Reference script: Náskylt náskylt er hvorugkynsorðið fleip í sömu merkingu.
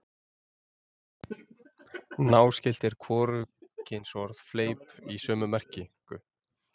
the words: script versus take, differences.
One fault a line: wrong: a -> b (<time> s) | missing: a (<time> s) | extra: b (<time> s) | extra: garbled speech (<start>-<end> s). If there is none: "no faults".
missing: náskylt (2.9 s)